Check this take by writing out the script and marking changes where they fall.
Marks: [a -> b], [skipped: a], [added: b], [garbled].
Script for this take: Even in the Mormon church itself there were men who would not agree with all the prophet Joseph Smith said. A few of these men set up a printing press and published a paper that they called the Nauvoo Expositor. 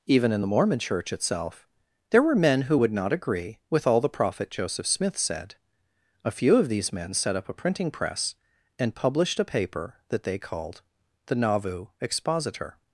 Even in the Mormon church itself there were men who would not agree with all the prophet Joseph Smith said. A few of these men set up a printing press and published a paper that they called the Nauvoo Expositor.